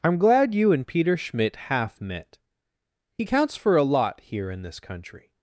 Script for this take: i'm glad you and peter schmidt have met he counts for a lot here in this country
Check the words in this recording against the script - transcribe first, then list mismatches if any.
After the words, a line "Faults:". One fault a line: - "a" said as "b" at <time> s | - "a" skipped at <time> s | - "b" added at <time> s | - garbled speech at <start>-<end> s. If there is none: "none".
i'm glad you and peter schmidt half met he counts for a lot here in this country
Faults:
- "have" said as "half" at 1.7 s